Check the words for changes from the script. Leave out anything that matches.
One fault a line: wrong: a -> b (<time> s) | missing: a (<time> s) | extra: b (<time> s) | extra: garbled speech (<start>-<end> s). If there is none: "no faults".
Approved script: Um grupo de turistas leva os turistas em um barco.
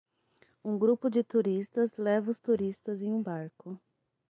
no faults